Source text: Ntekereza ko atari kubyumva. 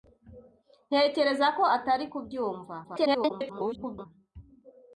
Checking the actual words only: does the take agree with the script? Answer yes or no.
no